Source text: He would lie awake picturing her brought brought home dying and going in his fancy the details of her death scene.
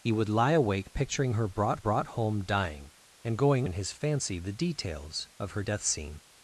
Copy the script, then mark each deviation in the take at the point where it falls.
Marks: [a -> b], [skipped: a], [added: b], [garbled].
He would lie awake picturing her brought brought home dying and going in his fancy the details of her death scene.